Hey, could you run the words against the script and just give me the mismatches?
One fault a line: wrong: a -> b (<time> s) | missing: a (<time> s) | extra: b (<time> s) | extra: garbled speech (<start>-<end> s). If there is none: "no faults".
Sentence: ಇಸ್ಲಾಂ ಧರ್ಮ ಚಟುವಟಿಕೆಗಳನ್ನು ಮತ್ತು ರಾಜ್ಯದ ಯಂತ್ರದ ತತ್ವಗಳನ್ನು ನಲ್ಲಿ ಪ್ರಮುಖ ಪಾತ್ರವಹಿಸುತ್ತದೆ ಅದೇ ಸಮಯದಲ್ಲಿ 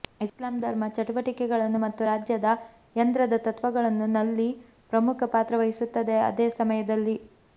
no faults